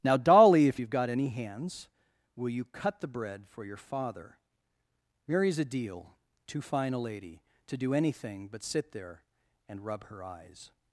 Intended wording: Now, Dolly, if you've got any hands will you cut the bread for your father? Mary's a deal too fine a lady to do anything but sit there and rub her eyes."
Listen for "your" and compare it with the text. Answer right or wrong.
right